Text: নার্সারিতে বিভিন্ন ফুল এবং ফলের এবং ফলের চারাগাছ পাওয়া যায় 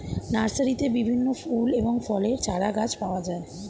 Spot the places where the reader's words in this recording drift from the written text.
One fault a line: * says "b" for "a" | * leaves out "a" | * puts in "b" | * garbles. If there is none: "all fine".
* leaves out "এবং ফলের"